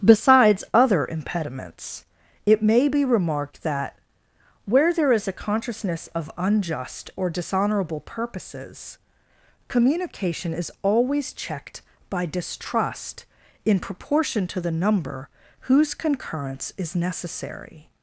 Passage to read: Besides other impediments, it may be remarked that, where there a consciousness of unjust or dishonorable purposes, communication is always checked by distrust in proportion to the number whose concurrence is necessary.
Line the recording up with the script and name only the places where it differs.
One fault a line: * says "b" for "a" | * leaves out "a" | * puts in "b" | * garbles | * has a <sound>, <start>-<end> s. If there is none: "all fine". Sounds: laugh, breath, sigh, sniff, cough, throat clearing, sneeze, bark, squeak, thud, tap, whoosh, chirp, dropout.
* puts in "is"